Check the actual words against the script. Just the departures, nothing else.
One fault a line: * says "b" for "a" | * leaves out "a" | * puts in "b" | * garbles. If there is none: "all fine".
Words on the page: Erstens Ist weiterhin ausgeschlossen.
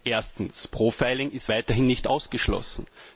* puts in "Profiling"
* puts in "nicht"